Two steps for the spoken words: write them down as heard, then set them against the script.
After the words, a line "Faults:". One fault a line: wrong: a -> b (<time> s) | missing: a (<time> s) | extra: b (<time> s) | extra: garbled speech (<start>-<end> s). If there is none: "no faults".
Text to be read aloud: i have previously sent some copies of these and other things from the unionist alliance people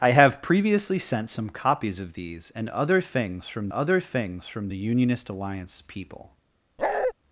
i have previously sent some copies of these and other things from other things from the unionist alliance people
Faults:
extra: other things from (3.7 s)